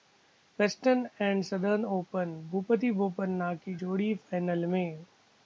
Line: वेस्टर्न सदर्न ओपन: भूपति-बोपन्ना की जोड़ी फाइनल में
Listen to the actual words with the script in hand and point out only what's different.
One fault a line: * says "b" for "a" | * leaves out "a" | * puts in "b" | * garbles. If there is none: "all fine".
* puts in "एंड"